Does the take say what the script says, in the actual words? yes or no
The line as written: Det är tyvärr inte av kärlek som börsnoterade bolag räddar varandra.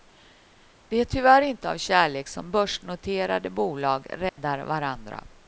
yes